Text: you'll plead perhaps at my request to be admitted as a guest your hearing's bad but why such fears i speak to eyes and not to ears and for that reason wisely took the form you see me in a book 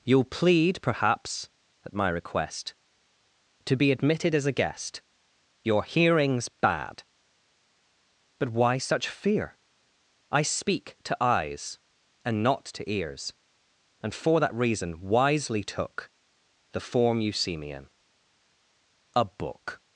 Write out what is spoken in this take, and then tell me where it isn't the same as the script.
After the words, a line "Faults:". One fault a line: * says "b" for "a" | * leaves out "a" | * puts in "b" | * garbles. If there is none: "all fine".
you'll plead perhaps at my request to be admitted as a guest your hearing's bad but why such fear i speak to eyes and not to ears and for that reason wisely took the form you see me in a book
Faults:
* says "fear" for "fears"